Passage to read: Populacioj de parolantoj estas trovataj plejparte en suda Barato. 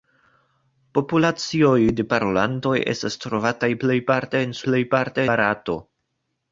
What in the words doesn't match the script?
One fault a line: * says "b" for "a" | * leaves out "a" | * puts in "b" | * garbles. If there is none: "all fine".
* says "plejparte" for "suda"